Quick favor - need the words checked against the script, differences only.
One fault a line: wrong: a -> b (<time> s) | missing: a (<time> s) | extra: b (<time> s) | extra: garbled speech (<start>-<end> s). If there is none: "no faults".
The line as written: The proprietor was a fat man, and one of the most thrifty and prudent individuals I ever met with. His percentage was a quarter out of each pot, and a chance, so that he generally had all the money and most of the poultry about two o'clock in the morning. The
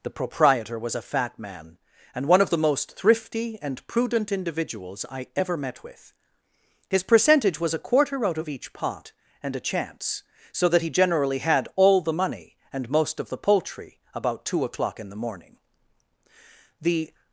no faults